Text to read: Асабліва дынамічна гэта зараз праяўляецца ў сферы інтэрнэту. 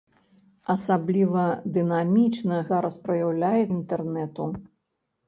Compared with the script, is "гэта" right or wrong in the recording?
wrong